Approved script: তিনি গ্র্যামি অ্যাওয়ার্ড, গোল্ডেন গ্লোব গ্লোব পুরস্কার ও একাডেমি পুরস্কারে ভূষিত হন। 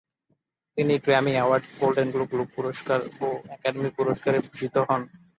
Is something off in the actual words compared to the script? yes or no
no